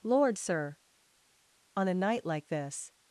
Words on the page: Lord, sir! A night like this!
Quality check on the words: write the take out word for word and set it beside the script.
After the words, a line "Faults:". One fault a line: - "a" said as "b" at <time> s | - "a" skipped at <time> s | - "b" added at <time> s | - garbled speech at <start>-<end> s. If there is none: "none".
Lord, sir! On a night like this!
Faults:
- "On" added at 1.7 s